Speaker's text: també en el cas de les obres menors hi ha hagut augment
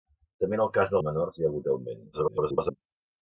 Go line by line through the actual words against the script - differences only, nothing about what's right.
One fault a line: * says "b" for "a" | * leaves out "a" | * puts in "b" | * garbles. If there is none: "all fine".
* leaves out "les obres"
* garbles